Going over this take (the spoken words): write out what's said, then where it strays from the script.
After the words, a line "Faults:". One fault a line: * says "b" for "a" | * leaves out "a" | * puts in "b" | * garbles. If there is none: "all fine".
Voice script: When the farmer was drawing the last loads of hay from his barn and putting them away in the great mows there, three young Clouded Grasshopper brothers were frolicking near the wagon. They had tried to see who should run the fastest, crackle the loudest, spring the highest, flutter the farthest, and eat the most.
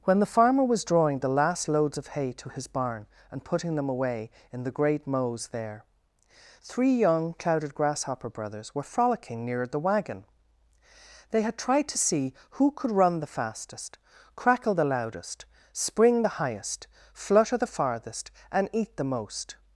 When the farmer was drawing the last loads of hay to his barn and putting them away in the great mows there, three young Clouded Grasshopper brothers were frolicking near the wagon. They had tried to see who could run the fastest, crackle the loudest, spring the highest, flutter the farthest, and eat the most.
Faults:
* says "to" for "from"
* says "could" for "should"